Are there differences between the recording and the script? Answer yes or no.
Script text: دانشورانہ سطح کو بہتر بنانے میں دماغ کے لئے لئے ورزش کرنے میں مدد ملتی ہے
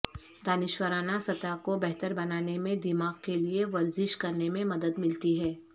yes